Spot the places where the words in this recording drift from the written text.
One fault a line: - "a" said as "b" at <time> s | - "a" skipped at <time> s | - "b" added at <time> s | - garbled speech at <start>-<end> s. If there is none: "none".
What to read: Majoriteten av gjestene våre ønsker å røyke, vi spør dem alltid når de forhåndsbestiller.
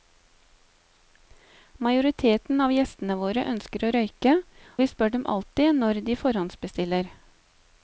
none